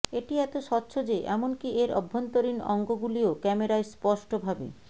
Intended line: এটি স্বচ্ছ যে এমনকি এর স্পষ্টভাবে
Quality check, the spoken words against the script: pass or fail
fail